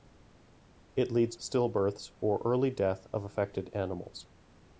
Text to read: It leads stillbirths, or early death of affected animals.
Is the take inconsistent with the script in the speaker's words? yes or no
no